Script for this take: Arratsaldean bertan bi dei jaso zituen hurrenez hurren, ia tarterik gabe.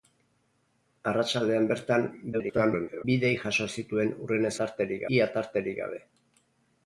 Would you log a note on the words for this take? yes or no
yes